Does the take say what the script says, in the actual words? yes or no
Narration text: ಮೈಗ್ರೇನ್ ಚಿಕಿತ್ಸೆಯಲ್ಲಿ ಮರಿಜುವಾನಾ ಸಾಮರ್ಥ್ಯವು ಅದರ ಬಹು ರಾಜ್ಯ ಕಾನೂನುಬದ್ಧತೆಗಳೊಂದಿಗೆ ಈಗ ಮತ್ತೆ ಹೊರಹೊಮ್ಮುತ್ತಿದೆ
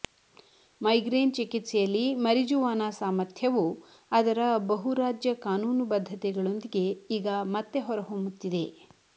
yes